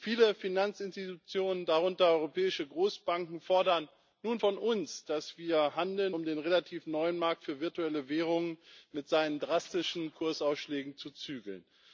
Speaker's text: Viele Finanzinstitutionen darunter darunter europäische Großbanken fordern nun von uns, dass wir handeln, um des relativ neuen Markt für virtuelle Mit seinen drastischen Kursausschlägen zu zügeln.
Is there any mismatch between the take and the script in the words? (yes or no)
yes